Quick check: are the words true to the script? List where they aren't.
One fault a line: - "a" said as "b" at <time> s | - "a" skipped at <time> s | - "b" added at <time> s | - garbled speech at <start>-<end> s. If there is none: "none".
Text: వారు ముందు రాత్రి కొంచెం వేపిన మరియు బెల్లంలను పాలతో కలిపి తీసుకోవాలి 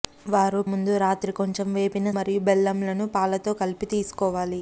none